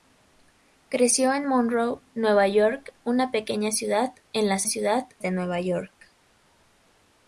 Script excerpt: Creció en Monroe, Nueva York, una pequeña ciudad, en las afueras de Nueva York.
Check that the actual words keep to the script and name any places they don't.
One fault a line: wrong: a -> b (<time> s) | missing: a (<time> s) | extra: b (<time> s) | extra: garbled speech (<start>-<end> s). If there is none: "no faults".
wrong: afueras -> ciudad (4.7 s)